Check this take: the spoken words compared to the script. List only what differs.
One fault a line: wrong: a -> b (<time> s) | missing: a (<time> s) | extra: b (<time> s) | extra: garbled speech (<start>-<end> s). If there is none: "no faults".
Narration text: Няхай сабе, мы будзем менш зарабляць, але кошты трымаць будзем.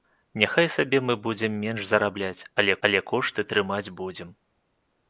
extra: але (2.9 s)